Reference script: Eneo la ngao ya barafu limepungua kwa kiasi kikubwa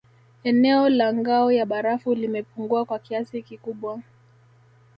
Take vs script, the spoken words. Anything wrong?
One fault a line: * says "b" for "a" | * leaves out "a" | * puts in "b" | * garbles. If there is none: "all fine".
all fine